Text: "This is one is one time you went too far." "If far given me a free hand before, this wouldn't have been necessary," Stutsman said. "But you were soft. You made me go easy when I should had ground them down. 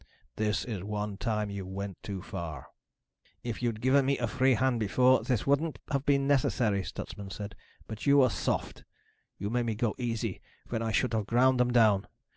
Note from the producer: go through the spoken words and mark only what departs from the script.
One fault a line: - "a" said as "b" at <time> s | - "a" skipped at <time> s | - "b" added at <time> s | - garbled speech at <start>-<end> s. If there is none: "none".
- "is one" skipped at 1.2 s
- "far" said as "you'd" at 3.6 s
- "had" said as "have" at 11.1 s